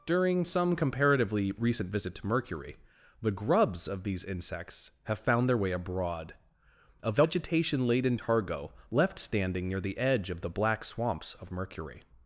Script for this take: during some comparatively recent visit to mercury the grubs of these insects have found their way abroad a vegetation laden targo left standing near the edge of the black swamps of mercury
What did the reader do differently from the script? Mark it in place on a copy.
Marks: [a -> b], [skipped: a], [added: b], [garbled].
during some comparatively recent visit to mercury the grubs of these insects have found their way abroad a vegetation laden targo left standing near the edge of the black swamps of mercury